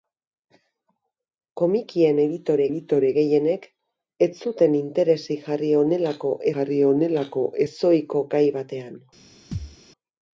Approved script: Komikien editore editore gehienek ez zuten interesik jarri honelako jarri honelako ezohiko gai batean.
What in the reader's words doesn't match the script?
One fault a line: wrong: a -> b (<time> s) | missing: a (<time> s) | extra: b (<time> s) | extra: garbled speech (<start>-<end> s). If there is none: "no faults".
no faults